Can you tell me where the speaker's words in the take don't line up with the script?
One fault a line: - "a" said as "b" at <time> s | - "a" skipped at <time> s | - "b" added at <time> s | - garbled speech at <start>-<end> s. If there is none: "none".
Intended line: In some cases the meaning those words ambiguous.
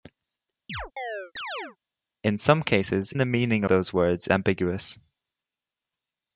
none